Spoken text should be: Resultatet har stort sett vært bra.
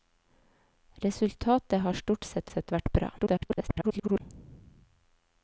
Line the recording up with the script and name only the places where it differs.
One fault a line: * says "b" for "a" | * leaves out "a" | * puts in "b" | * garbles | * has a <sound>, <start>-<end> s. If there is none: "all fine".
* puts in "sett"
* garbles